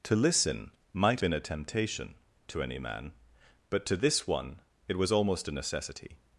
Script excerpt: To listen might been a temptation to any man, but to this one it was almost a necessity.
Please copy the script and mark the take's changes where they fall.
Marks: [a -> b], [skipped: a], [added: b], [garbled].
To listen might been a temptation to any man, but to this one it was almost a necessity.